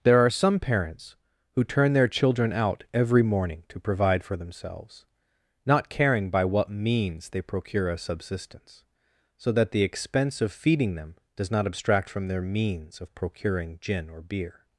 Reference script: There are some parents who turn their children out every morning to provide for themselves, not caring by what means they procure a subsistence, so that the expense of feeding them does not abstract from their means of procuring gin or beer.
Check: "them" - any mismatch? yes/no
no